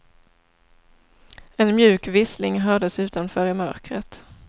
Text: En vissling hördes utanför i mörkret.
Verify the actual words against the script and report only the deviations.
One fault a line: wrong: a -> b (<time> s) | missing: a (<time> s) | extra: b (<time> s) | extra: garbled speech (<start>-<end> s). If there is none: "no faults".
extra: mjuk (1.8 s)